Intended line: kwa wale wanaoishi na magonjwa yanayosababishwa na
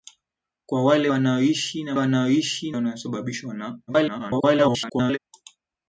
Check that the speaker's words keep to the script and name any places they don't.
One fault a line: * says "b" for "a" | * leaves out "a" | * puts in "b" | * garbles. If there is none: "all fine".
* says "wanaoishi" for "magonjwa"
* garbles